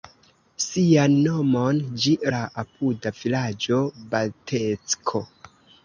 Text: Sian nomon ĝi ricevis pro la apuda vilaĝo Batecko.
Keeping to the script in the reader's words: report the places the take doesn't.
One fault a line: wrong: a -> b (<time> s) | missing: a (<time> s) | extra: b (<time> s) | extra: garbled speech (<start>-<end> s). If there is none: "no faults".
missing: ricevis pro (2.1 s)